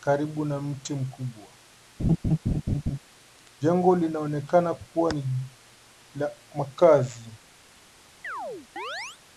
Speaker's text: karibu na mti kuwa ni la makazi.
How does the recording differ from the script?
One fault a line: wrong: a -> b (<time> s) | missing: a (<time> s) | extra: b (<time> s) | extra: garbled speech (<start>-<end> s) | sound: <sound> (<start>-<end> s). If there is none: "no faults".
extra: mkubwa Jengo linaonekana (0.9 s)
sound: laugh (2.0-3.0 s)
sound: chirp (8.2-9.2 s)